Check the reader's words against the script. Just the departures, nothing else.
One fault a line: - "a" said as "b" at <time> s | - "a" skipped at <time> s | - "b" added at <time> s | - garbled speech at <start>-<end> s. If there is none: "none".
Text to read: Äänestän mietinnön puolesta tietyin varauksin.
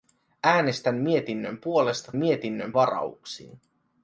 - "tietyin" said as "mietinnön" at 2.1 s